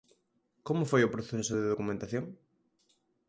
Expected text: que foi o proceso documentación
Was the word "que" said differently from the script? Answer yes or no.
yes